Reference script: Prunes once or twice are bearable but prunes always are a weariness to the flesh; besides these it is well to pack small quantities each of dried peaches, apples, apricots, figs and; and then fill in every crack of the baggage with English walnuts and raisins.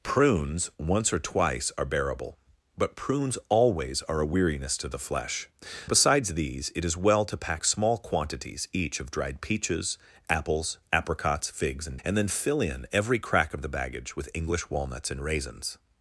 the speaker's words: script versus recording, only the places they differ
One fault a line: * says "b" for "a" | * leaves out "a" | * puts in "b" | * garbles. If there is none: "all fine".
all fine